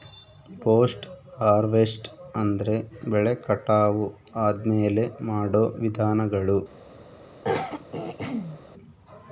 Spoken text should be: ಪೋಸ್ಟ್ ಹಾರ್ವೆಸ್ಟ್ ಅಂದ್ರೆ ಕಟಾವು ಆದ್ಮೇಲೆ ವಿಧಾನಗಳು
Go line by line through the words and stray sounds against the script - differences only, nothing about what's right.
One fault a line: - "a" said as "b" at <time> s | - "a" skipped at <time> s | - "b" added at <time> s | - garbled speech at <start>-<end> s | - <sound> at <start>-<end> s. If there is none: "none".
- "ಬೆಳೆ" added at 3.0 s
- "ಮಾಡೋ" added at 5.2 s
- throat clearing at 7.4-8.6 s